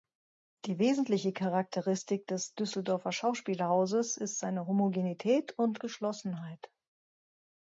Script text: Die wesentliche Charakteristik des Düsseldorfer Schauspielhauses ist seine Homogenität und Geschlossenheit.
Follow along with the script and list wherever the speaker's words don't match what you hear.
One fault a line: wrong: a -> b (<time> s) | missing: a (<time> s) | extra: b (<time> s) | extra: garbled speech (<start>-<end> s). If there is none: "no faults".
no faults